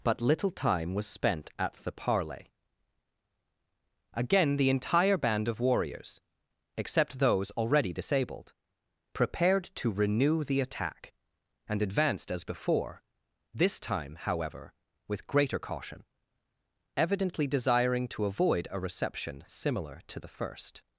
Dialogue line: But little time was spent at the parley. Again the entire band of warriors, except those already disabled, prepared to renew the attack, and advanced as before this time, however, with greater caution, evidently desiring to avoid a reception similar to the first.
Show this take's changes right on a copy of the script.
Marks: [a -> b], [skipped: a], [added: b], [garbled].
But little time was spent at the parley. Again the entire band of warriors, except those already disabled, prepared to renew the attack, and advanced as before this time, however, with greater caution, evidently desiring to avoid a reception similar to the first.